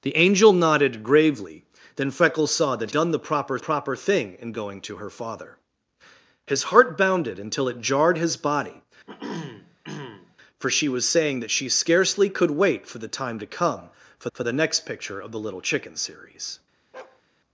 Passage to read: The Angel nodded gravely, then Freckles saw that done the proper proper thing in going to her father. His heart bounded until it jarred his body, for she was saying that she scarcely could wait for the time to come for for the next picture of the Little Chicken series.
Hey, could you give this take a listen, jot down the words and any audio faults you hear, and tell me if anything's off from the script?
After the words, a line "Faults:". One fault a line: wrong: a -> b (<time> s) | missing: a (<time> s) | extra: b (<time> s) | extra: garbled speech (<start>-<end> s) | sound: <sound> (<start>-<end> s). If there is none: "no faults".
The Angel nodded gravely, then Freckles saw that done the proper proper thing in going to her father. His heart bounded until it jarred his body, for she was saying that she scarcely could wait for the time to come for for the next picture of the Little Chicken series.
Faults:
sound: throat clearing (9.1-10.4 s)
sound: bark (16.9-17.2 s)